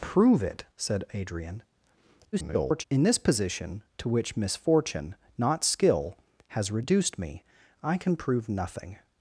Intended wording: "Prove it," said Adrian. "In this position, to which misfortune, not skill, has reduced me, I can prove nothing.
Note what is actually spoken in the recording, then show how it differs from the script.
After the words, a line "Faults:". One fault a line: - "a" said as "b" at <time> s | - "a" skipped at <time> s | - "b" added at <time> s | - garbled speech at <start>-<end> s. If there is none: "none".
"Prove it," said Adrian. [garbled] "In this position, to which misfortune, not skill, has reduced me, I can prove nothing.
Faults:
- garbled speech at 2.3-2.8 s